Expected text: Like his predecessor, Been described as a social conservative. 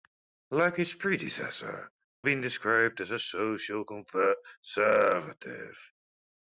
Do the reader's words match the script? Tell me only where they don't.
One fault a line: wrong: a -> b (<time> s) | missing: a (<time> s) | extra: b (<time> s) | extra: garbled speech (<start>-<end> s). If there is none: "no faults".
no faults